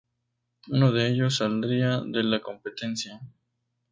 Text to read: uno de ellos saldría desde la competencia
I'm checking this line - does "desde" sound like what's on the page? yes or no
no